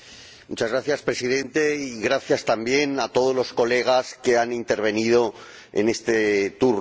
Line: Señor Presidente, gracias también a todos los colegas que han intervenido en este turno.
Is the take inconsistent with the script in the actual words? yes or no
no